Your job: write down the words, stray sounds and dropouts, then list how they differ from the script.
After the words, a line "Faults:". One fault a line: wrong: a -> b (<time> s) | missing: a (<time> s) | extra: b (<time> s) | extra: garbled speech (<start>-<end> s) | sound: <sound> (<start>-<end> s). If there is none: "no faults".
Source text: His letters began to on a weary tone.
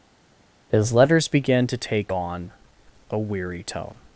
His letters began to take on a weary tone.
Faults:
extra: take (1.8 s)